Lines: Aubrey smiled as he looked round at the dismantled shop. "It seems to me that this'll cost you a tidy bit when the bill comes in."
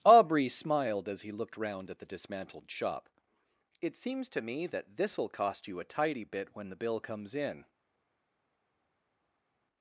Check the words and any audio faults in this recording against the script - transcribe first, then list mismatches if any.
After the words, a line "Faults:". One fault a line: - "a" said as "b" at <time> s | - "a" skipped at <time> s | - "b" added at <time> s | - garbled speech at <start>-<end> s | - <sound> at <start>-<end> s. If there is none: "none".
Aubrey smiled as he looked round at the dismantled shop. "It seems to me that this'll cost you a tidy bit when the bill comes in."
Faults:
none